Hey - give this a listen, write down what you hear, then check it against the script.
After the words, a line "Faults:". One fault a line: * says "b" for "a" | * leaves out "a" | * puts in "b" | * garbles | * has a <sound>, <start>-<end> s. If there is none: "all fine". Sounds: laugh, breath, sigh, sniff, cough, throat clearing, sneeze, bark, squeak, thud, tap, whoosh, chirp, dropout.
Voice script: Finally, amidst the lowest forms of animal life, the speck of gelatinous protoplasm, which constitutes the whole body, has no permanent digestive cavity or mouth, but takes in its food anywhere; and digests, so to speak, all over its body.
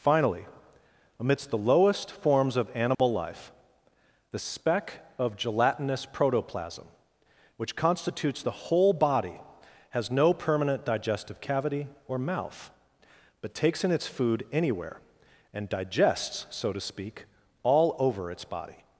Finally, amidst the lowest forms of animal life, the speck of gelatinous protoplasm, which constitutes the whole body, has no permanent digestive cavity or mouth, but takes in its food anywhere; and digests, so to speak, all over its body.
Faults:
* has a dropout, 2.9-3.0 s